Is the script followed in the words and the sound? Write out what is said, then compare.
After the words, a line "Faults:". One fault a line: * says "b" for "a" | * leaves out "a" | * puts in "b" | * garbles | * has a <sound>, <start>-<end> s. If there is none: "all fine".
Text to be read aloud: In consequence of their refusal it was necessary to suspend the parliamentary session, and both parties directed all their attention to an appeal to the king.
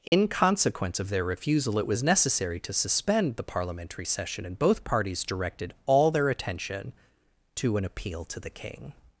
In consequence of their refusal it was necessary to suspend the parliamentary session, and both parties directed all their attention to an appeal to the king.
Faults:
* has a dropout, 0.1-0.1 s